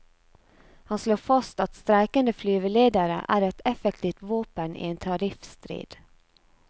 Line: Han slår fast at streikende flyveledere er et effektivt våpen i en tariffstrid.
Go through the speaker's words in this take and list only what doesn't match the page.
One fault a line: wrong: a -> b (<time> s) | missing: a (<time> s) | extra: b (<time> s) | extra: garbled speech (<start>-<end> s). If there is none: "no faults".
no faults